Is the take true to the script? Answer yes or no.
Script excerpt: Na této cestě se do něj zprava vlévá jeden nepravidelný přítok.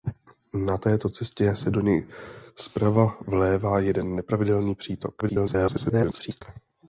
no